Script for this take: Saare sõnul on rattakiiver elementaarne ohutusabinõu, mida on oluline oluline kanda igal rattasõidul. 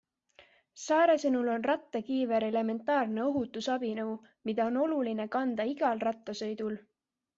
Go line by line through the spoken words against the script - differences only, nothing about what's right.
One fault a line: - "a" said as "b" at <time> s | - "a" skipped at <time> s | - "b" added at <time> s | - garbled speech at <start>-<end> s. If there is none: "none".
- "oluline" skipped at 5.3 s